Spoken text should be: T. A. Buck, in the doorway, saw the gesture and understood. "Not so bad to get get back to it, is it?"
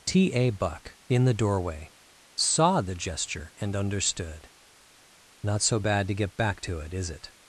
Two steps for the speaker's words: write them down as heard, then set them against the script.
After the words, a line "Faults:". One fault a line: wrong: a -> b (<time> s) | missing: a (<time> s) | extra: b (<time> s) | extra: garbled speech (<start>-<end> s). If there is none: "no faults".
T. A. Buck, in the doorway, saw the gesture and understood. "Not so bad to get back to it, is it?"
Faults:
missing: get (6.4 s)